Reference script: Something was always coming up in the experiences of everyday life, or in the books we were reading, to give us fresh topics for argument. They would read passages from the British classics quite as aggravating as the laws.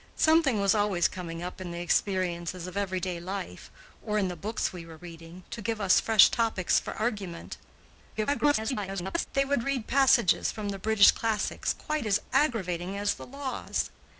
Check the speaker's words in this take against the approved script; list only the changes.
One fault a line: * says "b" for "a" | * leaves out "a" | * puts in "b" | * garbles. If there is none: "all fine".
* garbles